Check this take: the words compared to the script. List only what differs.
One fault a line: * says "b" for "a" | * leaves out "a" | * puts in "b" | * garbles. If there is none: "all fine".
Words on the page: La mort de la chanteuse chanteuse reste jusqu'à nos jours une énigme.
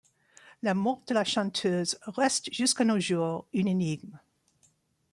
* leaves out "chanteuse"